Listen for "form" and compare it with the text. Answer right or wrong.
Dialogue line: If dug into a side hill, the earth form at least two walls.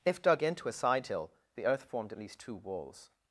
wrong